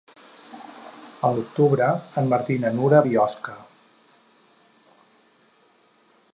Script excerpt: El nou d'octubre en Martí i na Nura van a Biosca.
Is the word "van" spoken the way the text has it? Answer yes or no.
no